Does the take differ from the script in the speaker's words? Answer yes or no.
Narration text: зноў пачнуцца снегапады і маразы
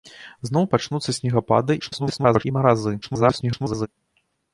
yes